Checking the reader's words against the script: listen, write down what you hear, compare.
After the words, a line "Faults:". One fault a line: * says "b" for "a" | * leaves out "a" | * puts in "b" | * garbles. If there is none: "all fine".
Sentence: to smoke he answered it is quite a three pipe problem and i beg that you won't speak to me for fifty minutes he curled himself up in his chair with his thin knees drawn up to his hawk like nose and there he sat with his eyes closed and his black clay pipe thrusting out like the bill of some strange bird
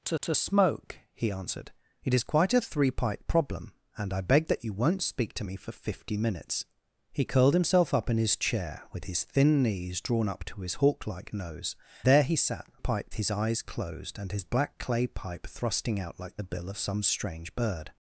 to to smoke he answered it is quite a three pipe problem and i beg that you won't speak to me for fifty minutes he curled himself up in his chair with his thin knees drawn up to his hawk like nose there he sat pipe his eyes closed and his black clay pipe thrusting out like the bill of some strange bird
Faults:
* puts in "to"
* leaves out "and"
* says "pipe" for "with"